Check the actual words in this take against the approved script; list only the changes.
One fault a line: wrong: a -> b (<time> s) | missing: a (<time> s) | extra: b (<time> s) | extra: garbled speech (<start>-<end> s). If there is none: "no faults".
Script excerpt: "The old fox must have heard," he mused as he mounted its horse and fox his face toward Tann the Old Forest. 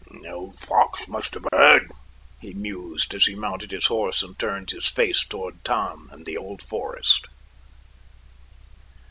wrong: its -> his (3.7 s)
wrong: fox -> turned (4.4 s)
extra: and (6.1 s)